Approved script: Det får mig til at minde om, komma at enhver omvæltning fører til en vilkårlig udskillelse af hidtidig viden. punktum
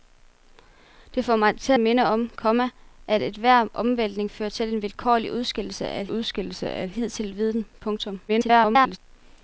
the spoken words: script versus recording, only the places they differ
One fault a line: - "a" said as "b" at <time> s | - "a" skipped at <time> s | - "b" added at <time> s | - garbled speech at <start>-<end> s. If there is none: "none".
- "at" skipped at 1.7 s
- "udskillelse af" added at 6.1 s
- garbled speech at 8.3-9.0 s